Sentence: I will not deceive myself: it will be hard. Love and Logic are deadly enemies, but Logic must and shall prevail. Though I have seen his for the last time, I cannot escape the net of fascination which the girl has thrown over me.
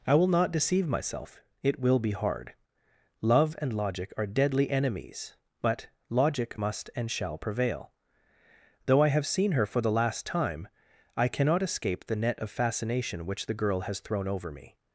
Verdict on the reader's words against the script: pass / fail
fail